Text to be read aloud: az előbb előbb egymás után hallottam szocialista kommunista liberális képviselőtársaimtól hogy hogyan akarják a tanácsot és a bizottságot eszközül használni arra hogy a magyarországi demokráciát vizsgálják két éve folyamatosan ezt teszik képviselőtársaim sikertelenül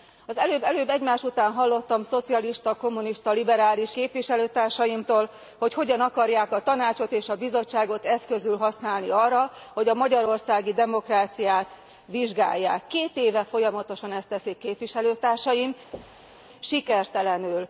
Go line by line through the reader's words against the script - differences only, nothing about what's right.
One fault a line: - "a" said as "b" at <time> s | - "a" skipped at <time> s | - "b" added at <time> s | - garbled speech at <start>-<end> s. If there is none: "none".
none